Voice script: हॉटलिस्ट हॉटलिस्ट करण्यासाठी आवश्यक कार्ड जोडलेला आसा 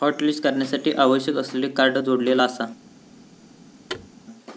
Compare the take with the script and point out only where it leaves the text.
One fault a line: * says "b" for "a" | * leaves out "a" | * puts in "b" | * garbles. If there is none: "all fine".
* leaves out "हॉटलिस्ट"
* puts in "असलेले"